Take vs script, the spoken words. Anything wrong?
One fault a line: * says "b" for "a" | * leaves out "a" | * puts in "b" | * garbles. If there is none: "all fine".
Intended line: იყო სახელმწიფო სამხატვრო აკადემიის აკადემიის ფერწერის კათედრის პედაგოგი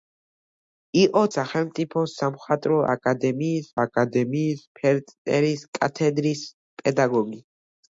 all fine